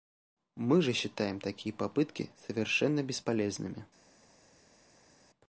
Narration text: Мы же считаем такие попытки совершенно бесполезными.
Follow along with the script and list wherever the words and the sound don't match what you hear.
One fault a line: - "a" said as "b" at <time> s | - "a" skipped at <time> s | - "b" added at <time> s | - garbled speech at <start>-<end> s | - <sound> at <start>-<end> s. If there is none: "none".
none